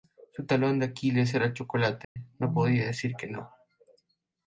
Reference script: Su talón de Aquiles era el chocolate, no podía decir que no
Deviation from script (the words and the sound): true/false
true